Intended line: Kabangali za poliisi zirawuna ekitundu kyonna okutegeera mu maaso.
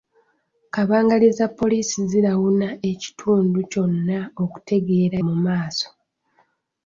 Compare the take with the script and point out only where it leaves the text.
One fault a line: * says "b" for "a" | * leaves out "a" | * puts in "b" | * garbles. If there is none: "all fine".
all fine